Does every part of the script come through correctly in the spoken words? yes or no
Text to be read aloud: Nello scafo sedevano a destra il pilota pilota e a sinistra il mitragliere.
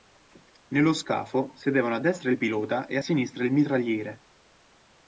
no